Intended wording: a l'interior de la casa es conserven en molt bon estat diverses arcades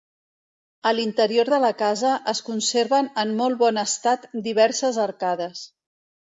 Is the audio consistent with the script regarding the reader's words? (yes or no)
yes